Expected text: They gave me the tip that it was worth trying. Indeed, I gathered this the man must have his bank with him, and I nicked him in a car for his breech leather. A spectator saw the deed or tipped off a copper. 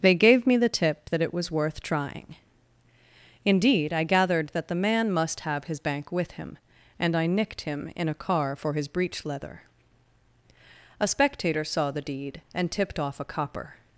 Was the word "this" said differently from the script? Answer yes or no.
yes